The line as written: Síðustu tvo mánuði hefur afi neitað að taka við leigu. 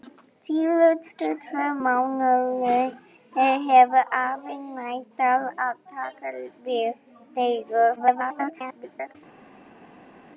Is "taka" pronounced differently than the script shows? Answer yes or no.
no